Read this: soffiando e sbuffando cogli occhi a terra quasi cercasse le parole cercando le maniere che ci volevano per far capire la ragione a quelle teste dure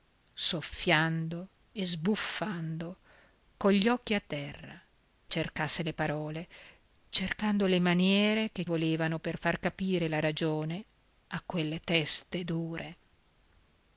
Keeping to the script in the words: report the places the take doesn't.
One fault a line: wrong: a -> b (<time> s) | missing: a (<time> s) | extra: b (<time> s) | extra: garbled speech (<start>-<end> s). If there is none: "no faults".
missing: quasi (4.8 s)
missing: ci (8.6 s)